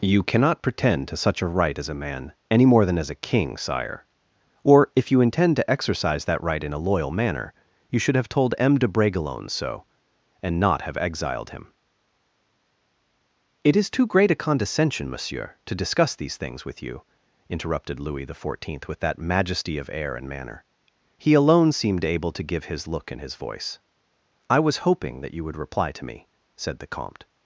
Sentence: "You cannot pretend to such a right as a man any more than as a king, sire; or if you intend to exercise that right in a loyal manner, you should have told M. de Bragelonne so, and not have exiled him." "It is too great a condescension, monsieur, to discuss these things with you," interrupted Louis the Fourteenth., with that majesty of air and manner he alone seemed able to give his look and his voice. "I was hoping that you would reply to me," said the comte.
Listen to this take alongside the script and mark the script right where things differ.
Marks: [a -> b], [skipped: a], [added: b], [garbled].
"You cannot pretend to such a right as a man any more than as a king, sire; or if you intend to exercise that right in a loyal manner, you should have told M. de Bragelonne so, and not have exiled him." "It is too great a condescension, monsieur, to discuss these things with you," interrupted Louis the Fourteenth., with that majesty of air and manner he alone seemed able to give his look and his voice. "I was hoping that you would reply to me," said the comte.